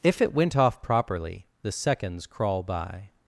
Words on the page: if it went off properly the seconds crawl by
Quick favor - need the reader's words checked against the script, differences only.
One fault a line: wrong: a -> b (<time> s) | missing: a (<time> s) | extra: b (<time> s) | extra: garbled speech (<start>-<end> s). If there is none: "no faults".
no faults